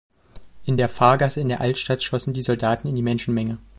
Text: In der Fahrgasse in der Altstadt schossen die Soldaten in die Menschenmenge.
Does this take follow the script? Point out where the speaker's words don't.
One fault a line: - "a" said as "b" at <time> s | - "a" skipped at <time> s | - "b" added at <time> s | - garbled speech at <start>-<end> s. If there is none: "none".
none